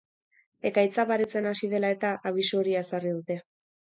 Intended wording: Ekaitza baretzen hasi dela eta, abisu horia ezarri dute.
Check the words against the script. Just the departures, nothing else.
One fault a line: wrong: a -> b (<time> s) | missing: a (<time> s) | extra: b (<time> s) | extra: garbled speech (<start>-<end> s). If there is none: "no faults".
no faults